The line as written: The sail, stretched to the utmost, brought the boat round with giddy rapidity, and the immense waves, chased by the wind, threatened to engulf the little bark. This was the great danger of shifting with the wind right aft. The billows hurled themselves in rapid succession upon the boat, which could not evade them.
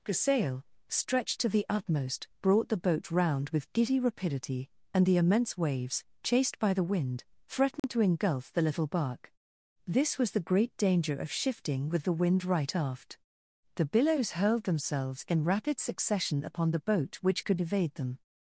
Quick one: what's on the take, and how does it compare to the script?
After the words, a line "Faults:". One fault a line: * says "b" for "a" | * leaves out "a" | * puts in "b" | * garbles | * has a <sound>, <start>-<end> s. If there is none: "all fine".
The sail, stretched to the utmost, brought the boat round with giddy rapidity, and the immense waves, chased by the wind, threatened to engulf the little bark. This was the great danger of shifting with the wind right aft. The billows hurled themselves in rapid succession upon the boat, which could evade them.
Faults:
* has a dropout, 7.8-7.8 s
* leaves out "not"